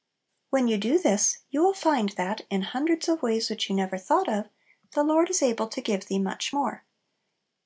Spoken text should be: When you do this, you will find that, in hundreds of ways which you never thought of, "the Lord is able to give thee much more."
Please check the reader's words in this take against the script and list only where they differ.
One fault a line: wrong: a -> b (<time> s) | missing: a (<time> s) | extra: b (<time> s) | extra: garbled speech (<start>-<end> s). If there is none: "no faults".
no faults